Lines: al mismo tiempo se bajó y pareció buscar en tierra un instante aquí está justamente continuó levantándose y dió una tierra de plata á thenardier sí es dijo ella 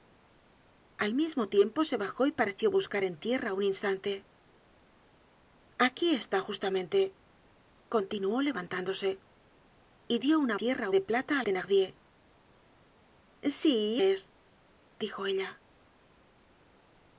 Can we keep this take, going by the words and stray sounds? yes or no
yes